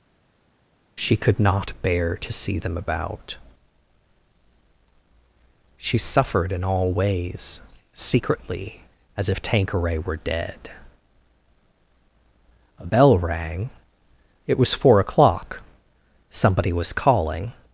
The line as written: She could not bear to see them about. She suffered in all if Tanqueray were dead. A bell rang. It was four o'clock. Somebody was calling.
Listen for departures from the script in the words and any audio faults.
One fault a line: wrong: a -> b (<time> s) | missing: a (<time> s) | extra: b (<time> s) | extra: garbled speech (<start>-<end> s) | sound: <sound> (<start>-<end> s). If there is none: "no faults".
extra: ways secretly as (6.9 s)